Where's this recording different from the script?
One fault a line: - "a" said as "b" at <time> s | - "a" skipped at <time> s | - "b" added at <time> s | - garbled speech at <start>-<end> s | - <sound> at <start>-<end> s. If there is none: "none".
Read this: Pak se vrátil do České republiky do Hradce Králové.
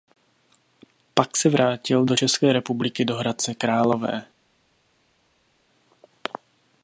none